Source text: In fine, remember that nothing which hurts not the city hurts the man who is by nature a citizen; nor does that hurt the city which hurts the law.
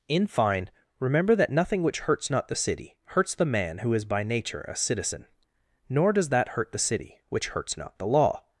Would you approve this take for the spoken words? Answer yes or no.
no